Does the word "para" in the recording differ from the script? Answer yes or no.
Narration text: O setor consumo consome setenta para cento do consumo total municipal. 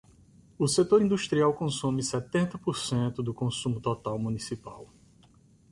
yes